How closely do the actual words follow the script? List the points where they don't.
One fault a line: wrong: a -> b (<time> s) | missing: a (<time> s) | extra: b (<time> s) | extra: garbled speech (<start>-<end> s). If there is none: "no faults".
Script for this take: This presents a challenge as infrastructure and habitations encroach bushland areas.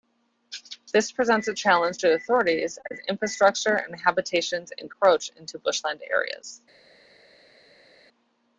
extra: to authorities (2.0 s)
extra: into (5.3 s)